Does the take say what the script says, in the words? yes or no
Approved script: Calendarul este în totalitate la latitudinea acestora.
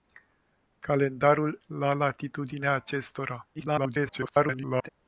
no